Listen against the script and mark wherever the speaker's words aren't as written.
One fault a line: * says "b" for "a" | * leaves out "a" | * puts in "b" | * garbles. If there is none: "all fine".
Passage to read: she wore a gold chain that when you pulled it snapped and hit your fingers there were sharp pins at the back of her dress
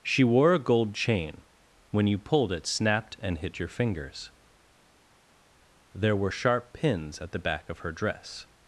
* leaves out "that"